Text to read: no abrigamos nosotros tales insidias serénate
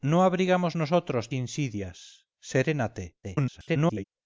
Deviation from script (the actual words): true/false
true